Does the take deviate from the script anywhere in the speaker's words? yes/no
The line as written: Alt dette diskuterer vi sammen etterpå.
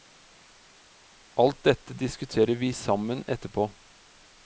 no